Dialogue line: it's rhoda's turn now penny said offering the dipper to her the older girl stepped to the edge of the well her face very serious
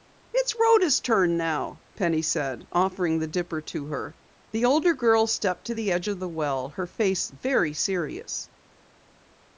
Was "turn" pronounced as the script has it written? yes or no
yes